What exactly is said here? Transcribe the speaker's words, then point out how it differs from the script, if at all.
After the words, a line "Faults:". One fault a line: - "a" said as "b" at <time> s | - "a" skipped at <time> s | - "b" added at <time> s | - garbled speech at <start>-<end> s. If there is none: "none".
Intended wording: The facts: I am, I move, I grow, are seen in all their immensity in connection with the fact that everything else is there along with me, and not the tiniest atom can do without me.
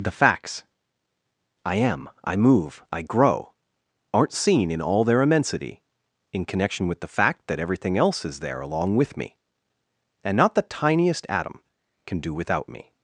The facts: I am, I move, I grow, aren't seen in all their immensity in connection with the fact that everything else is there along with me, and not the tiniest atom can do without me.
Faults:
- "are" said as "aren't" at 4.1 s